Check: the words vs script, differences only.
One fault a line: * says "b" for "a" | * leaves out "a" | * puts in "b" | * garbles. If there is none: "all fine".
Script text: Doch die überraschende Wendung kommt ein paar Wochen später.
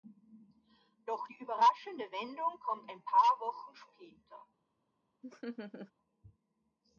all fine